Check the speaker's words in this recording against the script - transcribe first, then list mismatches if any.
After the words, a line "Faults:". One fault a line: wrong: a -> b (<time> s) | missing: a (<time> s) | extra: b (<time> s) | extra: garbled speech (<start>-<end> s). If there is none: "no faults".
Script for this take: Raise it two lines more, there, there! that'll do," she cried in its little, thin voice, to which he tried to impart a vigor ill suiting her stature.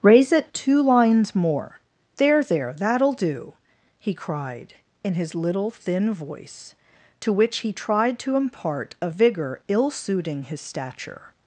Raise it two lines more, there, there! that'll do," he cried in his little, thin voice, to which he tried to impart a vigor ill suiting his stature.
Faults:
wrong: she -> he (4.0 s)
wrong: its -> his (5.1 s)
wrong: her -> his (10.4 s)